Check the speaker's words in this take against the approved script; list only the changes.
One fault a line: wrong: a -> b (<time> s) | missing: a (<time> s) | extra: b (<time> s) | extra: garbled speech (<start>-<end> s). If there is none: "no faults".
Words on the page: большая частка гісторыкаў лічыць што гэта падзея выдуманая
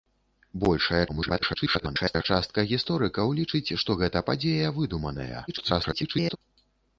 extra: garbled speech (1.1-2.2 s)
extra: garbled speech (5.5-6.4 s)